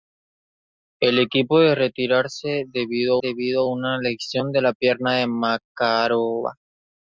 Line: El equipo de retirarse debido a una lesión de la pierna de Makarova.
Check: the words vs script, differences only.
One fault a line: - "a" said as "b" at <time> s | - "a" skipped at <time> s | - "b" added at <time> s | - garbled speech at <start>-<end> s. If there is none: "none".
- "debido" added at 3.2 s